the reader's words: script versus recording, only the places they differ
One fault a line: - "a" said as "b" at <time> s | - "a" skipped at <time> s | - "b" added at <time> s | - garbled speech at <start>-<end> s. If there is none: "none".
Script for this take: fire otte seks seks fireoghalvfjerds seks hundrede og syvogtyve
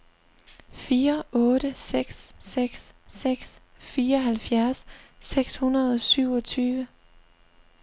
- "seks" added at 3.1 s